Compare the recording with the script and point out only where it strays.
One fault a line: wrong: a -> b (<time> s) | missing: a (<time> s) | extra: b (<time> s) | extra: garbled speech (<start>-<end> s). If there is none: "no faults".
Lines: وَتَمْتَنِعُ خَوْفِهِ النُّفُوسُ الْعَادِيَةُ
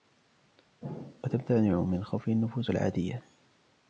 extra: مِنْ (1.8 s)